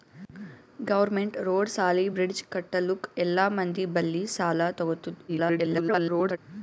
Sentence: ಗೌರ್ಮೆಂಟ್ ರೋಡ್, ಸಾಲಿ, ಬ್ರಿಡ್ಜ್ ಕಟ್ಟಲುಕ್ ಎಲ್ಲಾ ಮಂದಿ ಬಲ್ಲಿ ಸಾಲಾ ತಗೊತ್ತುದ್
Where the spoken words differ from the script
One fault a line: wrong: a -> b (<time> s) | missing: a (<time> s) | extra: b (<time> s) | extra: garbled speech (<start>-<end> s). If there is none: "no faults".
extra: garbled speech (5.3-6.4 s)